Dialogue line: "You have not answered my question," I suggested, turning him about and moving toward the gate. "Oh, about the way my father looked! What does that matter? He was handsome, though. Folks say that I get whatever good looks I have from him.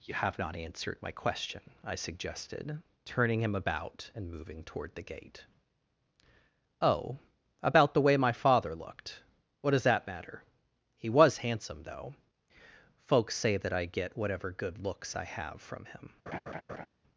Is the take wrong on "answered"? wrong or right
right